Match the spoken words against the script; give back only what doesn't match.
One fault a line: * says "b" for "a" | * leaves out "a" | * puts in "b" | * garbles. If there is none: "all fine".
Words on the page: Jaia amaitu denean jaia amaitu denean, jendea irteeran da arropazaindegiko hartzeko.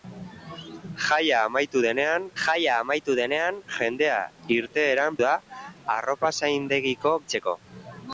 all fine